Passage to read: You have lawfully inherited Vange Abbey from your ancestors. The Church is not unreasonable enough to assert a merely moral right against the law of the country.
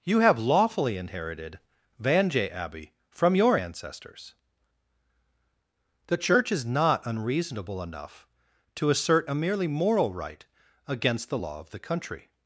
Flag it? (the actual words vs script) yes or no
no